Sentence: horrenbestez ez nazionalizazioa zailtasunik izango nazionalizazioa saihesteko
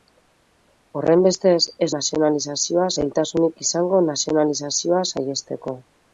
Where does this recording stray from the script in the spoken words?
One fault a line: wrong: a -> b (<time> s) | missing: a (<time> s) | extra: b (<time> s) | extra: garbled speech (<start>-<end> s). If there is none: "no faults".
no faults